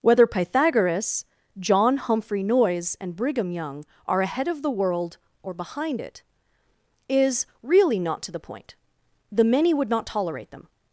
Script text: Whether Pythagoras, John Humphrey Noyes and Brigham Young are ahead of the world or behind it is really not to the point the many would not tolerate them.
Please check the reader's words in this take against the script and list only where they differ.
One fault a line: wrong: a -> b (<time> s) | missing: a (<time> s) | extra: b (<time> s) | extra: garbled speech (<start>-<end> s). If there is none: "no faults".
no faults